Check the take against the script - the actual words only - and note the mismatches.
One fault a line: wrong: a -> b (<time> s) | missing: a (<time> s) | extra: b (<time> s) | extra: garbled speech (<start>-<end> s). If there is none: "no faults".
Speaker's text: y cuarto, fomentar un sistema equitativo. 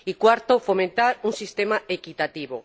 no faults